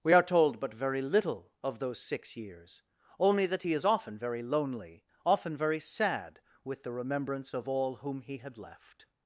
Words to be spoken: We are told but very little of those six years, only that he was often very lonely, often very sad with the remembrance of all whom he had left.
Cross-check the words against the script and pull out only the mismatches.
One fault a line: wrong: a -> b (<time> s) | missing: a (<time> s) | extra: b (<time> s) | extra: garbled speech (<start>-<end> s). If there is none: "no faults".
wrong: was -> is (3.7 s)